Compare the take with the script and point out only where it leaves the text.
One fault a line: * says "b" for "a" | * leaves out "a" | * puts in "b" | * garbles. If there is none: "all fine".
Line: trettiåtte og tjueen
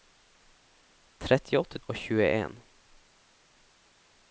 all fine